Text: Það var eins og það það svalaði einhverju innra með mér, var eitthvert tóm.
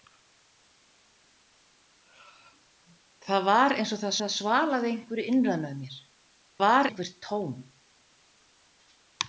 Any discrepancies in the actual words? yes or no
no